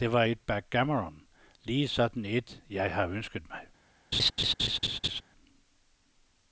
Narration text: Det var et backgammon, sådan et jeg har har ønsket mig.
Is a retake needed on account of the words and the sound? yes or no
yes